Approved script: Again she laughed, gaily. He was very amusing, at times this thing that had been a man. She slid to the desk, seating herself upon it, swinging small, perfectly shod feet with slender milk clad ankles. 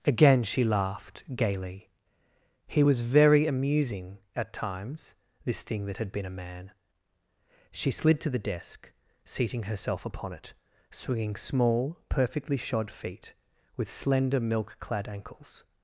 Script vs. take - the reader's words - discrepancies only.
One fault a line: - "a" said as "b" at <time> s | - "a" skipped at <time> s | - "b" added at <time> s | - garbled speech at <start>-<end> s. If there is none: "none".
none